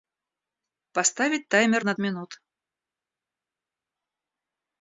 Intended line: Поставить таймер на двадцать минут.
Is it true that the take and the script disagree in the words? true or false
true